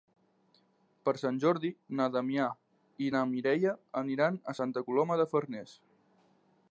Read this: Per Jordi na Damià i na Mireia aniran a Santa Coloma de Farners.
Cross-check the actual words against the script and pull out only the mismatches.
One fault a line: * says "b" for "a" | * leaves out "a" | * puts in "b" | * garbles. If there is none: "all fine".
* puts in "Sant"